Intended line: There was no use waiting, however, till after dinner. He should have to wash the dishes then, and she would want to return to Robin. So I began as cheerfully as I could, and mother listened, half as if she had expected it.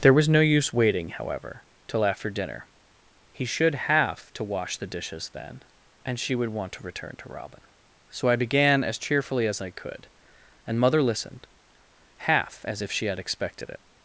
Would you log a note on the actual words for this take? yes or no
no